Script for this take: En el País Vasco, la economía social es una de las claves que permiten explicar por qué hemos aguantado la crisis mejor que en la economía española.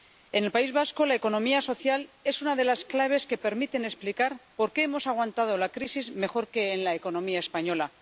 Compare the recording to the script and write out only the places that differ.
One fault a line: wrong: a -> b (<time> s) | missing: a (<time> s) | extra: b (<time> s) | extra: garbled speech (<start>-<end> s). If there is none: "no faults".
no faults